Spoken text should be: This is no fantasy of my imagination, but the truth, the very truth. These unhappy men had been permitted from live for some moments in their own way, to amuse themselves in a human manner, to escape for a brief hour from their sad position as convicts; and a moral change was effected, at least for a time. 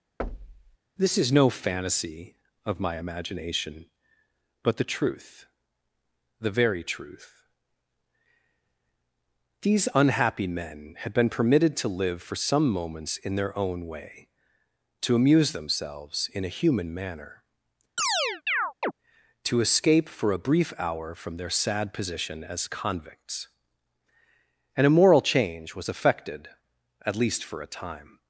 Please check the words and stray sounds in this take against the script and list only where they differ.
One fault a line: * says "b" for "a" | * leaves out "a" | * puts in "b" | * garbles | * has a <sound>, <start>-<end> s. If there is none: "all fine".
* has a thud, 0.2-0.8 s
* says "to" for "from"
* has a chirp, 18.0-18.9 s